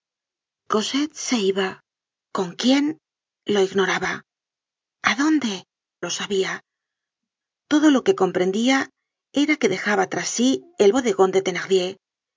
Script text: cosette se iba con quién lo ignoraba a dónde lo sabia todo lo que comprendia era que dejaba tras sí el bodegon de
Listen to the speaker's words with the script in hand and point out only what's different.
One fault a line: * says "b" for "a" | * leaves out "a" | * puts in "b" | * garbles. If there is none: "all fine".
all fine